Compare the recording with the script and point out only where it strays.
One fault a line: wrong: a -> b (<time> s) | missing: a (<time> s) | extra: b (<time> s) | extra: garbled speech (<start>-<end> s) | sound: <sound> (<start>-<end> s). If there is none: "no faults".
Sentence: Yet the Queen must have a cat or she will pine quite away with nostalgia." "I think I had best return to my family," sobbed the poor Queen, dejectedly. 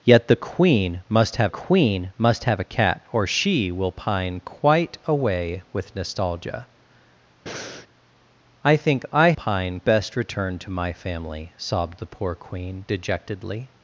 extra: Queen must have (1.5 s)
sound: breath (7.5-7.9 s)
wrong: had -> pine (9.3 s)